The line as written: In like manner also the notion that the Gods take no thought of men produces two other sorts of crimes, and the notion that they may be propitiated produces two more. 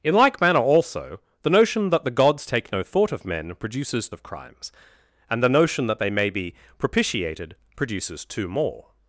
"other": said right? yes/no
no